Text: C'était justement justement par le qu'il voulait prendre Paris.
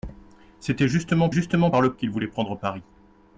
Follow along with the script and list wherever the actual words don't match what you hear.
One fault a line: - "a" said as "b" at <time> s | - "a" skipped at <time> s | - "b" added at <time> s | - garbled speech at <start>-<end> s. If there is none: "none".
none